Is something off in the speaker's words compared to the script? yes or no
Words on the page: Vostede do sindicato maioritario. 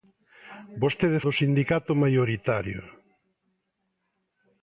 no